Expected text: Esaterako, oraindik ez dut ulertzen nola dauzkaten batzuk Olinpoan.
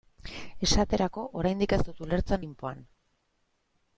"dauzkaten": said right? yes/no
no